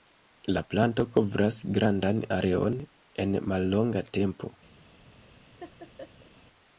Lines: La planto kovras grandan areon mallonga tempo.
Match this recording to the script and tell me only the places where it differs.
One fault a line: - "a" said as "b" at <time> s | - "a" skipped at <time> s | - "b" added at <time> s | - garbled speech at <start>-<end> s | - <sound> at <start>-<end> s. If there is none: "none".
- "en" added at 3.3 s
- laugh at 5.6-6.3 s